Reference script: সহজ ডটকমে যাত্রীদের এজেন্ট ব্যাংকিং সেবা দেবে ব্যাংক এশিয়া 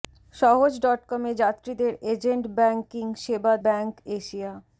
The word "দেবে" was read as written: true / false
false